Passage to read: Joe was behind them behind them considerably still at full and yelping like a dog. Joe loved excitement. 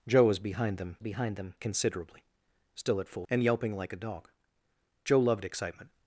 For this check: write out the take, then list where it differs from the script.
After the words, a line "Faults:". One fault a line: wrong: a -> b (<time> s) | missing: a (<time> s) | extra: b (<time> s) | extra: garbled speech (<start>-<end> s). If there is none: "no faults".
Joe was behind them behind them considerably still at full and yelping like a dog. Joe loved excitement.
Faults:
no faults